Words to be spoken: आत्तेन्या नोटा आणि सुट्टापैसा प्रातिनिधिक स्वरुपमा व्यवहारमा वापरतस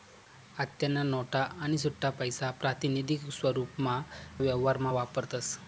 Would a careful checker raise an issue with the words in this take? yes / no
no